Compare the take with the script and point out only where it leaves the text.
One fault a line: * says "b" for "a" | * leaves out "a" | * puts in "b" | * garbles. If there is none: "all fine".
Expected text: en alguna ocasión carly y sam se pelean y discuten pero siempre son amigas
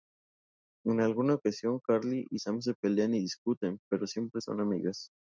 all fine